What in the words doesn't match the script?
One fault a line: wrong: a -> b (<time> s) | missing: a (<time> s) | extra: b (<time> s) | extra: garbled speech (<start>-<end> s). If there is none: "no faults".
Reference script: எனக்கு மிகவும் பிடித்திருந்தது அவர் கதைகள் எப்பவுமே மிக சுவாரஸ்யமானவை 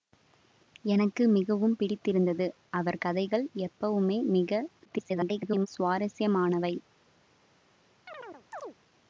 extra: garbled speech (4.8-5.7 s)